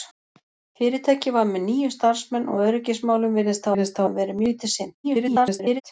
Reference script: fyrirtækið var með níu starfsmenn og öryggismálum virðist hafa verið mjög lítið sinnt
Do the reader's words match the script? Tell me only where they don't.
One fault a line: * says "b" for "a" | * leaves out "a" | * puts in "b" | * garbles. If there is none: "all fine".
* puts in "virðist"
* leaves out "mjög"
* garbles